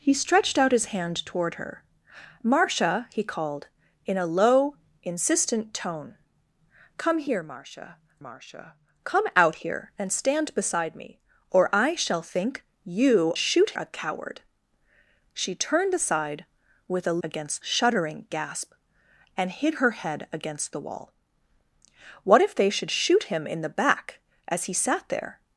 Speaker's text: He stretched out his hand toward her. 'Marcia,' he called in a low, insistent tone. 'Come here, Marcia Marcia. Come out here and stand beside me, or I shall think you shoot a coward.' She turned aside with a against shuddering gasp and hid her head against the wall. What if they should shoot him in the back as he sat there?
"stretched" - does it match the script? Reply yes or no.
yes